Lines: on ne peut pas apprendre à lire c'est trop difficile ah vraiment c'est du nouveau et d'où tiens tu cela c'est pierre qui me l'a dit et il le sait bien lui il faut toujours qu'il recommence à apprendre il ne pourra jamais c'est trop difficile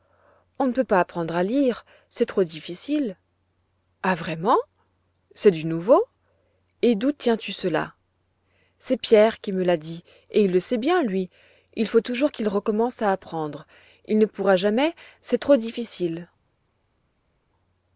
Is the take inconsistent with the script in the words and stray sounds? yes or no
no